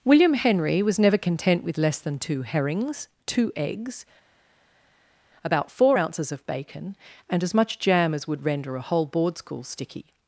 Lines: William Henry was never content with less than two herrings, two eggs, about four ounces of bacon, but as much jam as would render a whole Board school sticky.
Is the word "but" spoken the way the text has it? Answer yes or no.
no